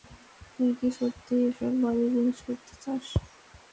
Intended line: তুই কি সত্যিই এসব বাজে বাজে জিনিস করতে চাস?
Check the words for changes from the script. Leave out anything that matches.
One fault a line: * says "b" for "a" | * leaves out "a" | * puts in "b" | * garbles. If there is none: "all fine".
* leaves out "বাজে"